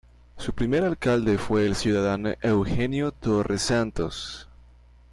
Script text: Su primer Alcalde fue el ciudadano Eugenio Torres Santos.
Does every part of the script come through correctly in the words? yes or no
yes